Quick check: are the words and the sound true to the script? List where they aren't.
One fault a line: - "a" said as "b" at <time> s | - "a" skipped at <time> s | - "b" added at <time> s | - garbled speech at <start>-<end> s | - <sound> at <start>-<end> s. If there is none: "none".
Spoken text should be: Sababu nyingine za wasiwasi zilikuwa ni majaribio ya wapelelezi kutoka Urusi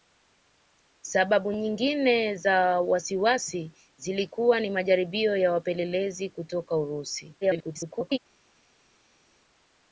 - garbled speech at 7.4-8.2 s